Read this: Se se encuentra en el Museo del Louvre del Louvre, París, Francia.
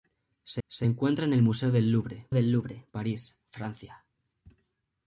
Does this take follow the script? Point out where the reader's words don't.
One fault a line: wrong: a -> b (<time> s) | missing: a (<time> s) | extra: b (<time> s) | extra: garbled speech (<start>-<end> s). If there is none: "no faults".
no faults